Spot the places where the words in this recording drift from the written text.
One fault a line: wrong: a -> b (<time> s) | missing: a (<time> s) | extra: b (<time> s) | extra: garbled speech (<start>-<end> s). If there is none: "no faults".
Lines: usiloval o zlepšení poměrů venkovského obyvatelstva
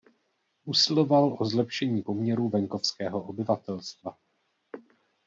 no faults